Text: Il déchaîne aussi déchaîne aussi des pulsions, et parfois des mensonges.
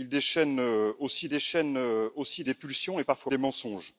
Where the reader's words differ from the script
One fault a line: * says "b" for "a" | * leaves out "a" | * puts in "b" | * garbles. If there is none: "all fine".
all fine